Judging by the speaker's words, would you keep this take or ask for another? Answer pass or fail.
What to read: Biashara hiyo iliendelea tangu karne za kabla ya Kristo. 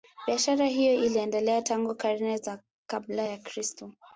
pass